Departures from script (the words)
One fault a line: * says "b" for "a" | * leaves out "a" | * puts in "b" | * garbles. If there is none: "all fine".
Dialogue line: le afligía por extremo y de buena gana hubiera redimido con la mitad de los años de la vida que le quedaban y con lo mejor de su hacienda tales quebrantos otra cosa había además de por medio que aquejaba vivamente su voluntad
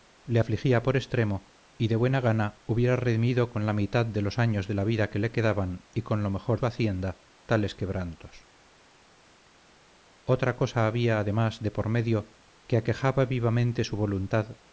* leaves out "de"